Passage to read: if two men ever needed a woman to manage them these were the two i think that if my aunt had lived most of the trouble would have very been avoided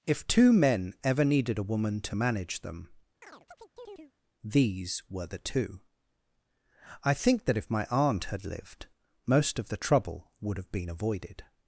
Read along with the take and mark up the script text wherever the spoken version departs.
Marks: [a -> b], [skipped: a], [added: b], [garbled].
if two men ever needed a woman to manage them these were the two i think that if my aunt had lived most of the trouble would have [skipped: very] been avoided